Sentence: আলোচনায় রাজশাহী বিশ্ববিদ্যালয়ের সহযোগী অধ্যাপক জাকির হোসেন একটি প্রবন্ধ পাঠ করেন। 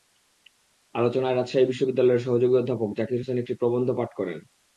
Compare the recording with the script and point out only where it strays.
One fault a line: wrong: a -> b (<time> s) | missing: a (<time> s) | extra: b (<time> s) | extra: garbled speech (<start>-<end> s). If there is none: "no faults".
no faults